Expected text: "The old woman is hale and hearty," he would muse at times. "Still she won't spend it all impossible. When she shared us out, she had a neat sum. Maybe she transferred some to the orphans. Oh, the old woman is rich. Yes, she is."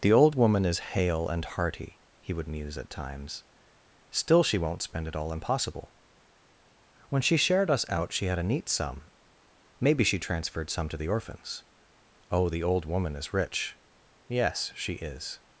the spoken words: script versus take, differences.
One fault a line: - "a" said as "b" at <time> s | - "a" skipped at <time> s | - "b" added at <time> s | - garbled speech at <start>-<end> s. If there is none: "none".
none